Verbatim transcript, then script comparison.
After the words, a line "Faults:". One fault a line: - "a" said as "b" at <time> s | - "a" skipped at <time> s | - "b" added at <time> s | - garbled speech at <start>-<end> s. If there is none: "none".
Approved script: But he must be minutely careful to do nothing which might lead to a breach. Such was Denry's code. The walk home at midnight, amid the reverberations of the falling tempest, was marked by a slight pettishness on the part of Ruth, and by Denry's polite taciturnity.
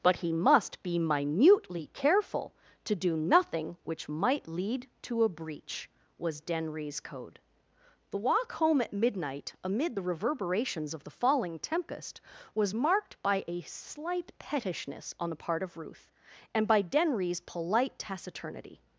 But he must be minutely careful to do nothing which might lead to a breach. was Denry's code. The walk home at midnight, amid the reverberations of the falling tempest, was marked by a slight pettishness on the part of Ruth, and by Denry's polite taciturnity.
Faults:
- "Such" skipped at 5.9 s